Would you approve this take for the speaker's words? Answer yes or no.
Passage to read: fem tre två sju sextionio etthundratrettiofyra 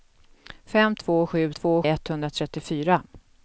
no